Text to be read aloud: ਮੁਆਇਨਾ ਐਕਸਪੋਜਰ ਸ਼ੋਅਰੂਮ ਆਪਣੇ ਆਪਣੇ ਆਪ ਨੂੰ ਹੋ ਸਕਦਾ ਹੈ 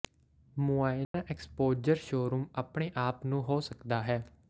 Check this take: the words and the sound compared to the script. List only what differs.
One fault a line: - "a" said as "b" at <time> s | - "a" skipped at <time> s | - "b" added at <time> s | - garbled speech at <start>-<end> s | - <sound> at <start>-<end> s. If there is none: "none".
- dropout at 1.0-1.1 s
- "ਆਪਣੇ" skipped at 2.9 s